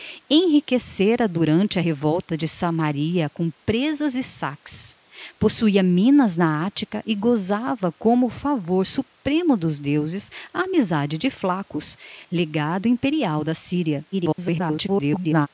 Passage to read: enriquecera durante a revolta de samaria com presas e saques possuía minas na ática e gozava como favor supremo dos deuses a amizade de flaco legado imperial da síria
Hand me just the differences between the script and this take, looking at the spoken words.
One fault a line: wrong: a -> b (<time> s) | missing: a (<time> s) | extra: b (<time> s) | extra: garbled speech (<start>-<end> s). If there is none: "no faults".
extra: garbled speech (14.1-15.5 s)